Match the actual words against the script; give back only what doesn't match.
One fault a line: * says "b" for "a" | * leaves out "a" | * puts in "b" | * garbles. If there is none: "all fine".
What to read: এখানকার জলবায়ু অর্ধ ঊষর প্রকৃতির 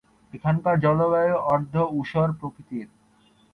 all fine